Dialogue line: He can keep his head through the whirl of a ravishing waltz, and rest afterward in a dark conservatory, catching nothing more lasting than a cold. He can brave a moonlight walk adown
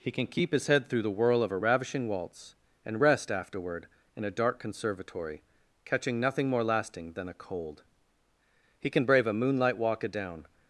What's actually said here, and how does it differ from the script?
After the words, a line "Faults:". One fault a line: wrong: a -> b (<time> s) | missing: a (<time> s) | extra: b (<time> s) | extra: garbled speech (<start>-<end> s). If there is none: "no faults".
He can keep his head through the whirl of a ravishing waltz, and rest afterward in a dark conservatory, catching nothing more lasting than a cold. He can brave a moonlight walk adown
Faults:
no faults